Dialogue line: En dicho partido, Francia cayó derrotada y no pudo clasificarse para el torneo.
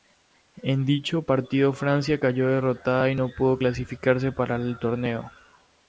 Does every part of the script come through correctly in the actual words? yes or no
yes